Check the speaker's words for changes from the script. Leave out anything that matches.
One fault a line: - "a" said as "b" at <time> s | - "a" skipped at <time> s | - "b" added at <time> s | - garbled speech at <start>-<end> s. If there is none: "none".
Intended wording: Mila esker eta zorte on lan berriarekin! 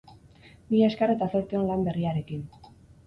none